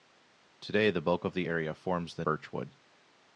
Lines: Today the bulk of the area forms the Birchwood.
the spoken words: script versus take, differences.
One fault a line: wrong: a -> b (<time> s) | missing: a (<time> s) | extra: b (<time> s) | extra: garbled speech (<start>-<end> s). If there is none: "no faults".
no faults